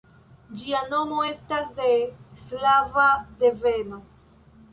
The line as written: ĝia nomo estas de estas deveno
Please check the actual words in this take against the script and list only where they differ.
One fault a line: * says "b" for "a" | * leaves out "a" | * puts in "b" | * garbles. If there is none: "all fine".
* says "slava" for "estas"